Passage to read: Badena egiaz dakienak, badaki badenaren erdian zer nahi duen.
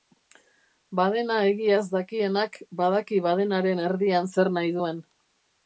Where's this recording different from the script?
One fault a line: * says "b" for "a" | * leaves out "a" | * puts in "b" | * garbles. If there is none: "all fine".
all fine